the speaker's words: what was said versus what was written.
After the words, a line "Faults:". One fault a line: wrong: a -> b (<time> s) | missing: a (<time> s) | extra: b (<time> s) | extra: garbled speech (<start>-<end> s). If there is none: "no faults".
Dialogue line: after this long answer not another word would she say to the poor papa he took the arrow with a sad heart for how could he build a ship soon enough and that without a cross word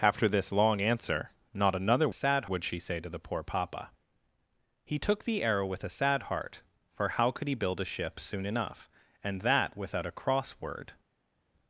after this long answer not another sad would she say to the poor papa he took the arrow with a sad heart for how could he build a ship soon enough and that without a cross word
Faults:
wrong: word -> sad (2.1 s)